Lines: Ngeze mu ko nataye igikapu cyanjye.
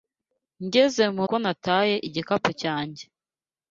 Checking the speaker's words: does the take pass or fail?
pass